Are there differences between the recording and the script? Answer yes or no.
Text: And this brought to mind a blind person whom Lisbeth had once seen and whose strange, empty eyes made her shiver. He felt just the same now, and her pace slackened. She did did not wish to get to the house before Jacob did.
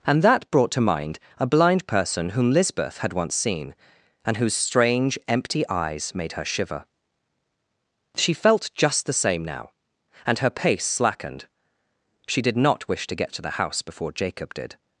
yes